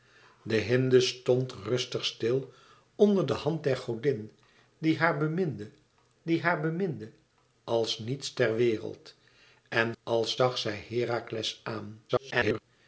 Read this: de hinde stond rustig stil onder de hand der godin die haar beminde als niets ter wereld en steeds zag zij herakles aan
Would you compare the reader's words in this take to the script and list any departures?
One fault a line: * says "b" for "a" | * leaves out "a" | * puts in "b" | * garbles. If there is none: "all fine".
* puts in "die haar beminde"
* says "als" for "steeds"
* garbles